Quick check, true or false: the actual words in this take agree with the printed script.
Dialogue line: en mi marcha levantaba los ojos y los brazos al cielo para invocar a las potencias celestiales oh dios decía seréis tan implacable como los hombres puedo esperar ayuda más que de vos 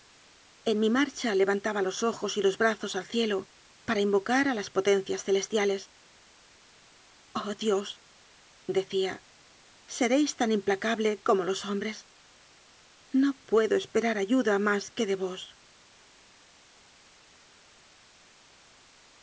false